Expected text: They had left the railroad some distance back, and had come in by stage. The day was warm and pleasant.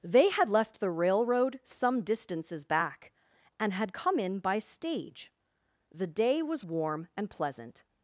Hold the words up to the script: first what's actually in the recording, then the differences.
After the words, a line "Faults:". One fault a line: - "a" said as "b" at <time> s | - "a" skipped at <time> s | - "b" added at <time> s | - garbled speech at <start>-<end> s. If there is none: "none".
They had left the railroad some distances back, and had come in by stage. The day was warm and pleasant.
Faults:
- "distance" said as "distances" at 2.0 s